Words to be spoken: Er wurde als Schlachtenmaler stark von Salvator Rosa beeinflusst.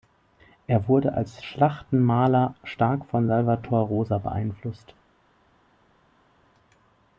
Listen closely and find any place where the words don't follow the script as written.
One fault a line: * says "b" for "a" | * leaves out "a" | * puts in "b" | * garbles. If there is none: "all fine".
all fine